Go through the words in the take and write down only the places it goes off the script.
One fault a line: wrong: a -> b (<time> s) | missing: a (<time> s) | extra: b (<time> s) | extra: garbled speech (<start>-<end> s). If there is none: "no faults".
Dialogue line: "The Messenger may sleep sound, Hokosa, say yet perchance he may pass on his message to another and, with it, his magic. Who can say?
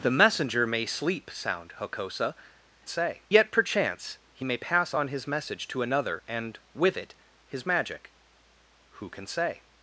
no faults